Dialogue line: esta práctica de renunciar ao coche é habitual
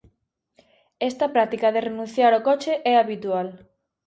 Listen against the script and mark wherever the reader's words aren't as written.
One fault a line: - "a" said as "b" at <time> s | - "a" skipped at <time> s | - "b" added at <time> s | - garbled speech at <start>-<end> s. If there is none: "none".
none